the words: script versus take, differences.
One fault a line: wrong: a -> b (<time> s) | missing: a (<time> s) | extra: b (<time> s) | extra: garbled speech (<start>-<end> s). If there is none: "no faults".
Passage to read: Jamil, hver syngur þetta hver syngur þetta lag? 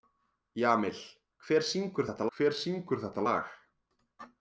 no faults